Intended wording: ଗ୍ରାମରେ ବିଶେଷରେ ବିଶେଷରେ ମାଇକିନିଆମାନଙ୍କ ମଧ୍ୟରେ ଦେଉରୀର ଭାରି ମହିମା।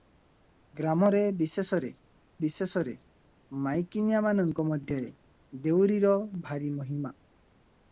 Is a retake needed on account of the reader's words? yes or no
no